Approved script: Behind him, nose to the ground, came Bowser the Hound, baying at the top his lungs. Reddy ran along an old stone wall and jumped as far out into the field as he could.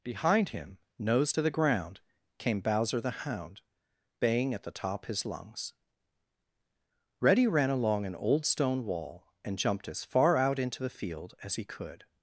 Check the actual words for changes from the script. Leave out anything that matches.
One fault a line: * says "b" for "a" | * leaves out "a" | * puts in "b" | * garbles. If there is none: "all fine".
all fine